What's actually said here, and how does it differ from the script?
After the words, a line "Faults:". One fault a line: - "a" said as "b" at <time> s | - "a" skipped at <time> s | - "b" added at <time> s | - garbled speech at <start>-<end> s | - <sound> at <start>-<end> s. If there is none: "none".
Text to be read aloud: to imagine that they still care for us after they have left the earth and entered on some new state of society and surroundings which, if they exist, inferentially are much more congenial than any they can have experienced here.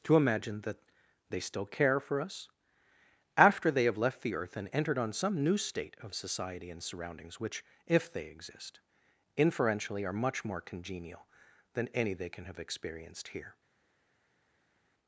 to imagine that they still care for us after they have left the earth and entered on some new state of society and surroundings which, if they exist, inferentially are much more congenial than any they can have experienced here.
Faults:
none